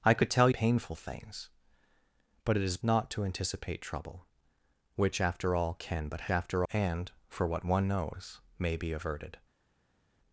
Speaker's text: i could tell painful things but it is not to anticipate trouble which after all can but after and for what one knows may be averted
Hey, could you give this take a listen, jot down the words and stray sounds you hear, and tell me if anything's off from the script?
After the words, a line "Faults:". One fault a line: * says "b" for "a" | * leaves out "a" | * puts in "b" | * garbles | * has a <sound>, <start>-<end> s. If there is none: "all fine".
i could tell painful things but it is not to anticipate trouble which after all can but after and for what one knows may be averted
Faults:
all fine